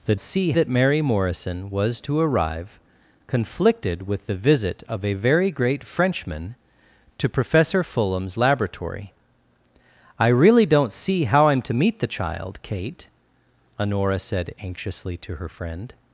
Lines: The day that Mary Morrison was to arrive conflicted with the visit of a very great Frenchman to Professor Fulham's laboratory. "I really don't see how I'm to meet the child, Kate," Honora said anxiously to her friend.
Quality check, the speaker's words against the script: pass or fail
fail